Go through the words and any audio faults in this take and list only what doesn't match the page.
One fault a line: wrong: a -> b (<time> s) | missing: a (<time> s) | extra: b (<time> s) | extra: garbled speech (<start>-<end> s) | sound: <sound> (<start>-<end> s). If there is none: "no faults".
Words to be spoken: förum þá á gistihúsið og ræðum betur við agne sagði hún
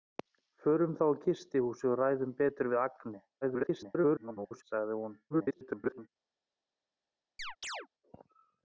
extra: garbled speech (3.4-4.6 s)
extra: garbled speech (5.3-6.1 s)
sound: chirp (7.4-7.9 s)